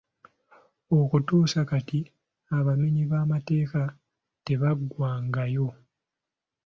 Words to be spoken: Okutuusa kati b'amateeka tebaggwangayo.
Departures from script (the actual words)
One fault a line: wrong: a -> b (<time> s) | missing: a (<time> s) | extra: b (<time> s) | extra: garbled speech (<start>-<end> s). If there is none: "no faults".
extra: abamenyi (2.6 s)